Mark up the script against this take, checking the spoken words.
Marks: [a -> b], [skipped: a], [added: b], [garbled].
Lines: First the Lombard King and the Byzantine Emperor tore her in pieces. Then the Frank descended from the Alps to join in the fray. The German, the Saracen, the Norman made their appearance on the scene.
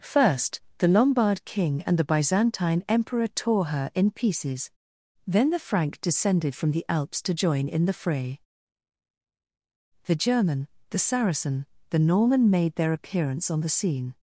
First the Lombard King and the Byzantine Emperor tore her in pieces. Then the Frank descended from the Alps to join in the fray. The German, the Saracen, the Norman made their appearance on the scene.